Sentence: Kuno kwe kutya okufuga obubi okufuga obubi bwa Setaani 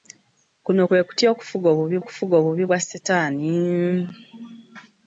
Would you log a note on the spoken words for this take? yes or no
no